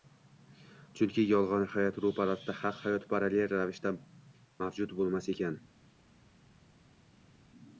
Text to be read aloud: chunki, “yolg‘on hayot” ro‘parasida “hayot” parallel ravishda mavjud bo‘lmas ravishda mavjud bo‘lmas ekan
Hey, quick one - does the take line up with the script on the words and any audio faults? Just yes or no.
no